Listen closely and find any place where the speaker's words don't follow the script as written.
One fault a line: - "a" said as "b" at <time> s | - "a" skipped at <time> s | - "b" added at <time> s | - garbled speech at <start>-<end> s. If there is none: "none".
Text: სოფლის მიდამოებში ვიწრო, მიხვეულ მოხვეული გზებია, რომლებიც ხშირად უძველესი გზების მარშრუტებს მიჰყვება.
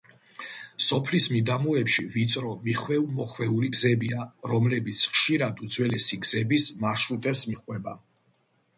none